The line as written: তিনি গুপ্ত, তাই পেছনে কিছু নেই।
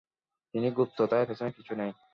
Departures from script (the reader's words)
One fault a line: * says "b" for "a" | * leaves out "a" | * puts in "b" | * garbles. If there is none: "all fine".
all fine